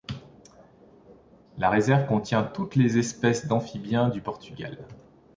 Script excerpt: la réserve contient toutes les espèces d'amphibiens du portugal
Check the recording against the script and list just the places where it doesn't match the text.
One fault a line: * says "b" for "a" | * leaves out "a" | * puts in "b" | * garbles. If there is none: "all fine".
all fine